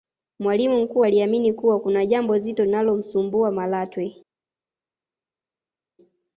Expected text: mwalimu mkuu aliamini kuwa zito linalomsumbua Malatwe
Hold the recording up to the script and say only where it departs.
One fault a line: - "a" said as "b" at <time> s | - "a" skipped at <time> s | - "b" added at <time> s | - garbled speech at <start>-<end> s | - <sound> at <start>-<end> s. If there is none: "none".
- "kuna jambo" added at 1.8 s